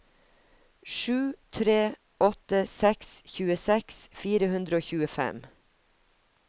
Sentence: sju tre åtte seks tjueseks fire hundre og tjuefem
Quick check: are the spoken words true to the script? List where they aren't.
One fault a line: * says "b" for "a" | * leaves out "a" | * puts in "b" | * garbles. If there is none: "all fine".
all fine